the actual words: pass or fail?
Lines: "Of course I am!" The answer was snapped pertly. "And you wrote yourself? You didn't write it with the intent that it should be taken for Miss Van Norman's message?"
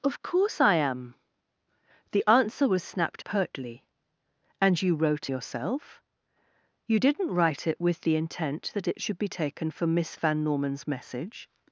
pass